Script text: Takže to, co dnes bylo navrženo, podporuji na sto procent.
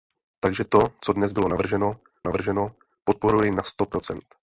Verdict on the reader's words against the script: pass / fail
fail